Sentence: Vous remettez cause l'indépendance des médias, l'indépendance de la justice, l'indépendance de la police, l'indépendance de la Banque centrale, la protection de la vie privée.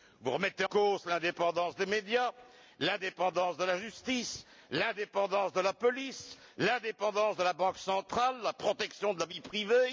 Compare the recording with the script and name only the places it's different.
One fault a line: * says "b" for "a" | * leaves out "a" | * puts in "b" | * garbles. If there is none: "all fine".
all fine